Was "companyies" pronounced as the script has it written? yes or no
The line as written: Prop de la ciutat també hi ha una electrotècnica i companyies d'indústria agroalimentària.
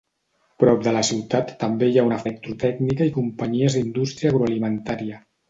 yes